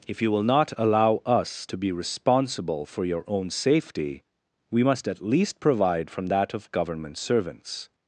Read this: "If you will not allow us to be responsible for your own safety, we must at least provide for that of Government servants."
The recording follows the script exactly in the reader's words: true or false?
false